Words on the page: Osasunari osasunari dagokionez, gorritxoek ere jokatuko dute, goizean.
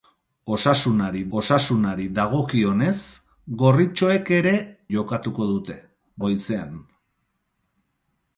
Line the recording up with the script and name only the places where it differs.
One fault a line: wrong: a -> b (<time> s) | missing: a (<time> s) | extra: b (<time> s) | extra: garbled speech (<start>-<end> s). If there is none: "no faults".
no faults